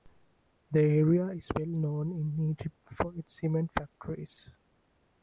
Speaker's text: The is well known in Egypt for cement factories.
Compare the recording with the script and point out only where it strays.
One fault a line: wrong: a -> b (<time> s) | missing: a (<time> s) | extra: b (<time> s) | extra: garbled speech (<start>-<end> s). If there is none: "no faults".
extra: area (0.8 s)
extra: its (3.2 s)